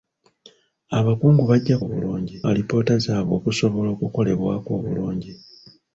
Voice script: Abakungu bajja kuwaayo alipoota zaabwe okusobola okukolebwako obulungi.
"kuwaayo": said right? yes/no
no